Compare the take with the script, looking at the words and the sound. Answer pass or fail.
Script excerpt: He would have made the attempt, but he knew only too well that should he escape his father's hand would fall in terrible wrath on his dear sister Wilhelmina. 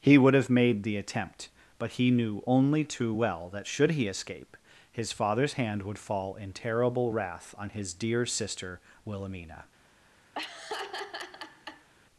fail